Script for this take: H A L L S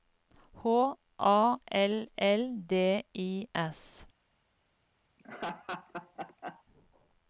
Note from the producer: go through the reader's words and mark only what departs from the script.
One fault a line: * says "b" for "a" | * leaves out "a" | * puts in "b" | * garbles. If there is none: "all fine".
* puts in "D I"